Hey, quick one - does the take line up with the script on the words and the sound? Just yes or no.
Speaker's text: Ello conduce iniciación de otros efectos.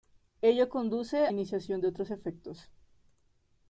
yes